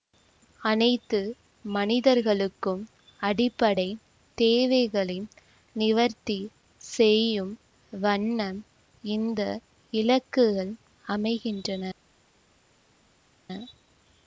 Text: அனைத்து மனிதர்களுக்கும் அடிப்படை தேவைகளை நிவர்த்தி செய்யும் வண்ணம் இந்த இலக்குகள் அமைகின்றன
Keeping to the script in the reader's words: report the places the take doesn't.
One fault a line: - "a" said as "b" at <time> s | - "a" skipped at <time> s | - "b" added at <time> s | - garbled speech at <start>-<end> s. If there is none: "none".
none